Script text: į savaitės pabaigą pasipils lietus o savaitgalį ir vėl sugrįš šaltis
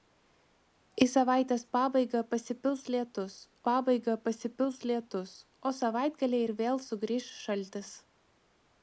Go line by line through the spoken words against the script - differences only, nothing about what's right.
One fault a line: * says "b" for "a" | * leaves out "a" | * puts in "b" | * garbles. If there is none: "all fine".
* puts in "pabaigą pasipils lietus"